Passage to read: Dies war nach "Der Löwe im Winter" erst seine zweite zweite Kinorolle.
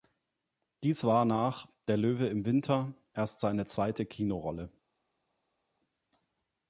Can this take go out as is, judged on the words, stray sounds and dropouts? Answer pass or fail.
fail